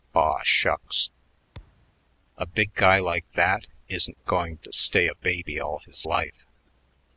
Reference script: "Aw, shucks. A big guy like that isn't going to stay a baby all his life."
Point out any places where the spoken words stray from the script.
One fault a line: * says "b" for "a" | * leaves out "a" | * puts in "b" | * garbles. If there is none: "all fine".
all fine